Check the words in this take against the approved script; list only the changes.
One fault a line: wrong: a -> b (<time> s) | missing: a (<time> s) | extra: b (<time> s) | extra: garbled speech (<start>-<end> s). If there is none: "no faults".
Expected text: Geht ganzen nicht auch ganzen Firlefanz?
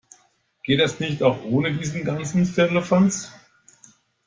wrong: ganzen -> das (0.8 s)
extra: ohne diesen (1.4 s)